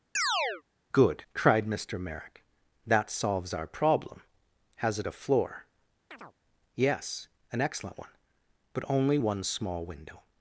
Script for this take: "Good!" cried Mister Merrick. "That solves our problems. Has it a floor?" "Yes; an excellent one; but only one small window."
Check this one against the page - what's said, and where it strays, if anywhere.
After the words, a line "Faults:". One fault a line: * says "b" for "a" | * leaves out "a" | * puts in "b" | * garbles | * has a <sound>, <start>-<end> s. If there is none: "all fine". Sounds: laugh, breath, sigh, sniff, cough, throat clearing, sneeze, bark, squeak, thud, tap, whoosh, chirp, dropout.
"Good!" cried Mister Merrick. "That solves our problem. Has it a floor?" "Yes; an excellent one; but only one small window."
Faults:
* has a chirp, 0.1-0.6 s
* says "problem" for "problems"
* has a chirp, 6.1-6.3 s